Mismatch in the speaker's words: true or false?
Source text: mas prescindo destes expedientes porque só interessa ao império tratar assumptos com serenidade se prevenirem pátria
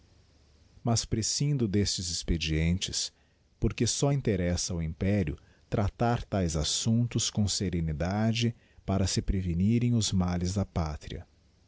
true